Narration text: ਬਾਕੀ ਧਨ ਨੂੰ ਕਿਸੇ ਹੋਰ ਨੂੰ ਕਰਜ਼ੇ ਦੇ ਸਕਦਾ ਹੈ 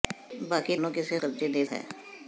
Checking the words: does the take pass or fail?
fail